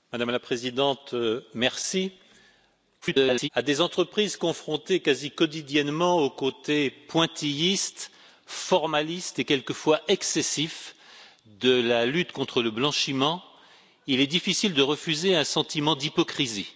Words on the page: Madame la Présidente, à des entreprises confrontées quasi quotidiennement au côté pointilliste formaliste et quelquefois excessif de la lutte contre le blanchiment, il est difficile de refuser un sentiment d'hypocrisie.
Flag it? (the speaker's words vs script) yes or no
yes